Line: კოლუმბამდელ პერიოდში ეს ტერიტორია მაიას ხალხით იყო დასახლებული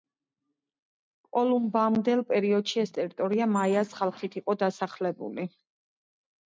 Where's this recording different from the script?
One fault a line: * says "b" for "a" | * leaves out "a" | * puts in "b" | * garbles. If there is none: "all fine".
all fine